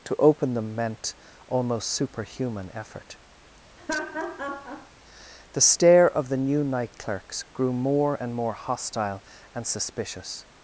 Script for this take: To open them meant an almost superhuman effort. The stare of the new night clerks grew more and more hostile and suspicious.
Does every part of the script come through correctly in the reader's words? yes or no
no